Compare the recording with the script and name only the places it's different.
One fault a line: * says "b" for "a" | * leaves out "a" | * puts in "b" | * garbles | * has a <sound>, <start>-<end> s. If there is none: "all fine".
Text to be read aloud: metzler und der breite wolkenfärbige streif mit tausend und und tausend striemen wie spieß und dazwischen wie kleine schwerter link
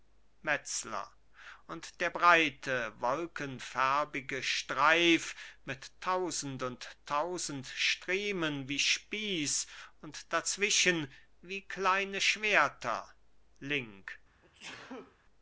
* leaves out "und"
* has a sneeze, 14.4-15.2 s